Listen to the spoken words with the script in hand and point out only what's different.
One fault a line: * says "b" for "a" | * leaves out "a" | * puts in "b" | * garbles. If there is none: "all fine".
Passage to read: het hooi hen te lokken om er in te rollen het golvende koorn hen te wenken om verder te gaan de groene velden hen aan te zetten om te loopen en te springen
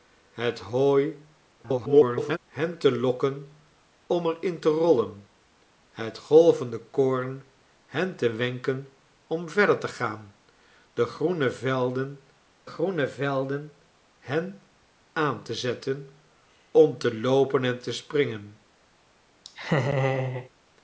* garbles
* puts in "groene velden"